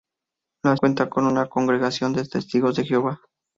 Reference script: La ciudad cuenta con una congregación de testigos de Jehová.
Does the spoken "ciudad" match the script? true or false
false